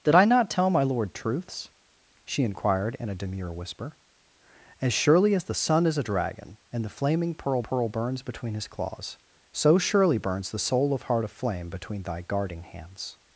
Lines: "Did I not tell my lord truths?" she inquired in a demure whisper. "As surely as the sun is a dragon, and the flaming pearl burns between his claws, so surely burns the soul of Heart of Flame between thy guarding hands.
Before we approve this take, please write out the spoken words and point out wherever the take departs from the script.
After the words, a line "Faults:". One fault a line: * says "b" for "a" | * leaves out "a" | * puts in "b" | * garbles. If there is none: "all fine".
"Did I not tell my lord truths?" she inquired in a demure whisper. "As surely as the sun is a dragon, and the flaming pearl pearl burns between his claws, so surely burns the soul of Heart of Flame between thy guarding hands.
Faults:
* puts in "pearl"